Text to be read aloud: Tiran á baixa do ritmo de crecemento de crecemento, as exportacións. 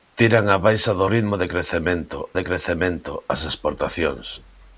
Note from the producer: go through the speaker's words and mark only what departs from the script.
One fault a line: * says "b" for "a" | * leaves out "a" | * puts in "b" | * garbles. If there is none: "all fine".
all fine